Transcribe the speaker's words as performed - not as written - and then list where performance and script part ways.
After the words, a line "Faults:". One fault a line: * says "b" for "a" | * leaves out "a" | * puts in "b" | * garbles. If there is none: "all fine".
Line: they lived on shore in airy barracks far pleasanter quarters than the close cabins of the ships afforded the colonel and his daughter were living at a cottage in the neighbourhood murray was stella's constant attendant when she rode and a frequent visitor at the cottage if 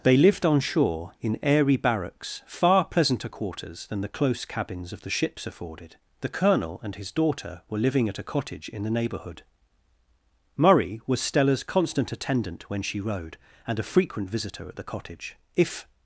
they lived on shore in airy barracks far pleasanter quarters than the close cabins of the ships afforded the colonel and his daughter were living at a cottage in the neighbourhood murray was stella's constant attendant when she rode and a frequent visitor at the cottage if
Faults:
all fine